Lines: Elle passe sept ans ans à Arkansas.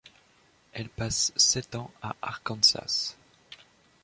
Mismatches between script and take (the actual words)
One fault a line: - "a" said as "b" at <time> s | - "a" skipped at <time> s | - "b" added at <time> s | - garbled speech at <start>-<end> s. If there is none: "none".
- "ans" skipped at 1.9 s